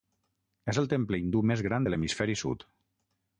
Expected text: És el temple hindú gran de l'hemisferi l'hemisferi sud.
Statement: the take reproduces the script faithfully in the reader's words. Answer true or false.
false